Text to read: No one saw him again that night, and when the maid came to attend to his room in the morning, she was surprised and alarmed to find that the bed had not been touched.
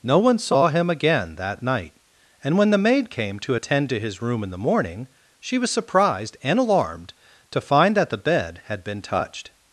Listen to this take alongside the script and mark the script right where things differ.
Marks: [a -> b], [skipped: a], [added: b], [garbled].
No one saw him again that night, and when the maid came to attend to his room in the morning, she was surprised and alarmed to find that the bed had [skipped: not] been touched.